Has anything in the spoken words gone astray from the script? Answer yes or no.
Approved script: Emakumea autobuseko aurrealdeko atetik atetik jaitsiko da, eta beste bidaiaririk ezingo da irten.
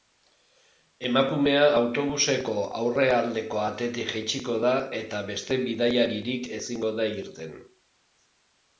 yes